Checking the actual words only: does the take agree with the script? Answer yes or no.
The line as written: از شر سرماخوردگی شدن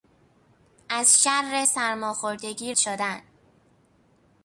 yes